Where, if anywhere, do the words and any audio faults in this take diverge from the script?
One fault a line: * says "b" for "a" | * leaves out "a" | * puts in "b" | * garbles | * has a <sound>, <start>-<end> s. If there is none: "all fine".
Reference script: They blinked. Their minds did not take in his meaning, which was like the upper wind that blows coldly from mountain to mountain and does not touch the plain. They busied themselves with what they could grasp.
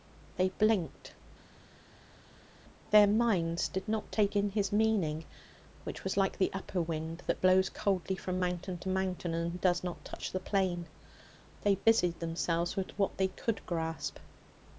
all fine